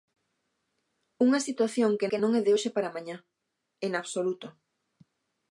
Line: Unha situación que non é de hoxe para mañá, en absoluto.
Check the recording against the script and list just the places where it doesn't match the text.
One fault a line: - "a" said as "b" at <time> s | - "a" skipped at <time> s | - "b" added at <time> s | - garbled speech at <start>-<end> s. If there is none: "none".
- "que" added at 2.1 s